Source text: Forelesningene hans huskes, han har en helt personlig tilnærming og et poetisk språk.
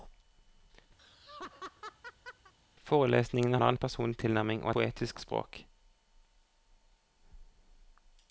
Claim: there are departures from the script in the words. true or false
true